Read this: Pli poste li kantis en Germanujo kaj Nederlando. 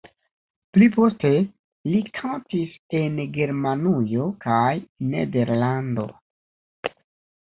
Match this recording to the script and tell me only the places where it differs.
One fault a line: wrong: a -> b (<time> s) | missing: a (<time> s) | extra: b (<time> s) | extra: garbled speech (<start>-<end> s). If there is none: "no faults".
no faults